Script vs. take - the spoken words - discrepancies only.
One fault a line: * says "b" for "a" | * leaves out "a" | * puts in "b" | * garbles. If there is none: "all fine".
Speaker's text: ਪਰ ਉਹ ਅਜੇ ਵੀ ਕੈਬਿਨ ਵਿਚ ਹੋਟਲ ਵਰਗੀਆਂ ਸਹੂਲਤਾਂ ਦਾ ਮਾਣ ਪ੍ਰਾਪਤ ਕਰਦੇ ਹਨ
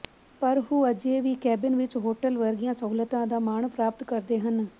all fine